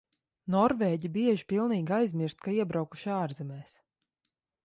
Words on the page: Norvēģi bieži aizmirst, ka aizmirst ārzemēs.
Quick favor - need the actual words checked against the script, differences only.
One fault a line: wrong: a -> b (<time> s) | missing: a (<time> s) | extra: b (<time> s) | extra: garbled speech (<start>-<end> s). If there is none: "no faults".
extra: pilnīgi (1.5 s)
wrong: aizmirst -> iebraukuši (2.6 s)